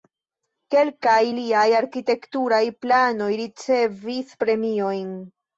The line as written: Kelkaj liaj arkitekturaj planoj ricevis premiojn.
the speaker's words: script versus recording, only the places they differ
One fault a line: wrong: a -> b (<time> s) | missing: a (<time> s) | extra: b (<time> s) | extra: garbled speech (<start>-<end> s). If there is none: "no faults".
no faults